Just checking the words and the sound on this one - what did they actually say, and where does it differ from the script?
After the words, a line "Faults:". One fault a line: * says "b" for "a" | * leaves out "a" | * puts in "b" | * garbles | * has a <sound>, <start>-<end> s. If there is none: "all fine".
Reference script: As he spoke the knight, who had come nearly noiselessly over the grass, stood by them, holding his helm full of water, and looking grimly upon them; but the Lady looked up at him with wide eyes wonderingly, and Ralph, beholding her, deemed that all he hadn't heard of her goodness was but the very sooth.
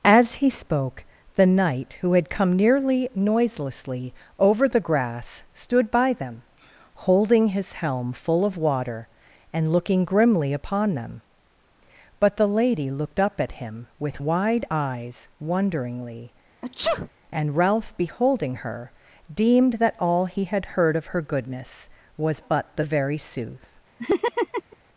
As he spoke the knight, who had come nearly noiselessly over the grass, stood by them, holding his helm full of water, and looking grimly upon them; but the Lady looked up at him with wide eyes wonderingly, and Ralph, beholding her, deemed that all he had heard of her goodness was but the very sooth.
Faults:
* has a sneeze, 16.6-17.1 s
* says "had" for "hadn't"
* has a laugh, 24.0-24.8 s